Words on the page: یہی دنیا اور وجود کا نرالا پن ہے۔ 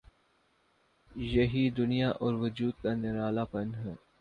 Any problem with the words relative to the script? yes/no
no